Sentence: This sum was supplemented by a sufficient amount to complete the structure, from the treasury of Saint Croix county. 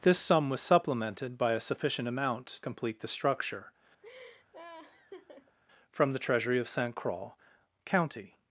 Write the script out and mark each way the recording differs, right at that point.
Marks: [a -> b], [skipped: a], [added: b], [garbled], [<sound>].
This sum was supplemented by a sufficient amount [skipped: to] complete the structure, [laugh] from the treasury of Saint Croix county.